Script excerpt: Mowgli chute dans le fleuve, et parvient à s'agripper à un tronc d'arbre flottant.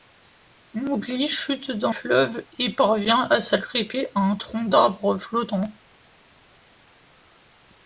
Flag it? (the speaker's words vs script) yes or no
yes